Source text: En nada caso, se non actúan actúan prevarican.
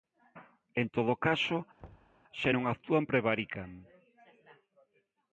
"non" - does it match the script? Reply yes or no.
yes